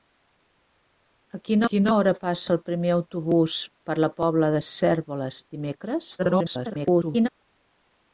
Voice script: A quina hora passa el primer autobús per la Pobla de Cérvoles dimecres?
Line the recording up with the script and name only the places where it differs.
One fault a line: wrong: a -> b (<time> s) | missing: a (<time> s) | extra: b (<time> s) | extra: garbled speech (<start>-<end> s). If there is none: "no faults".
extra: quina (1.7 s)
extra: garbled speech (6.2-7.3 s)